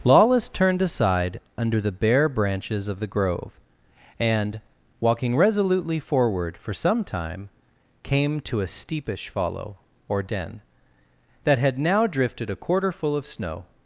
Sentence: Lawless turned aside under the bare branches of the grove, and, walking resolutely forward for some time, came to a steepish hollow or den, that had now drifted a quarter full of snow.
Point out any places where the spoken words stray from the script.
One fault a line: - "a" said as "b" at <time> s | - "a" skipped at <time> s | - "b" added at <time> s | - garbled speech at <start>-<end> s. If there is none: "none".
- "hollow" said as "follow" at 9.3 s